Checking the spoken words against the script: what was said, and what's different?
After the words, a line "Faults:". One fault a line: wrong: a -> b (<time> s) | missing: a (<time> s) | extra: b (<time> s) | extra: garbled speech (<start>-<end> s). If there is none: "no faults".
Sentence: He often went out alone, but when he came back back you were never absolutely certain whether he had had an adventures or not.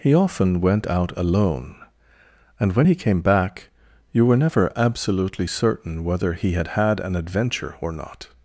He often went out alone, and when he came back you were never absolutely certain whether he had had an adventure or not.
Faults:
wrong: but -> and (2.6 s)
missing: back (3.7 s)
wrong: adventures -> adventure (7.2 s)